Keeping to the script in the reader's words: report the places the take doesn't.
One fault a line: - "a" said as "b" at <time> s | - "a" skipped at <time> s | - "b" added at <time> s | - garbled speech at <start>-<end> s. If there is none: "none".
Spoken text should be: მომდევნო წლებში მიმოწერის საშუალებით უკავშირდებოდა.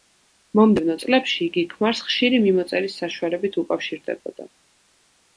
- "იგი ქმარს ხშირი" added at 1.5 s